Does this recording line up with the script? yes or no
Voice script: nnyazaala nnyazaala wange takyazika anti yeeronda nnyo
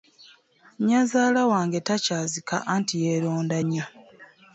no